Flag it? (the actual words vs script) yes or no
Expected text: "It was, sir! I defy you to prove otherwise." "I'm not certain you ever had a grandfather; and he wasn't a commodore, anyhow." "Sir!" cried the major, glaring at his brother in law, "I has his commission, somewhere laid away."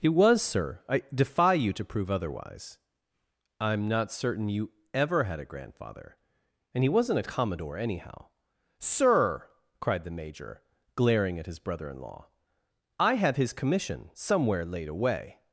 yes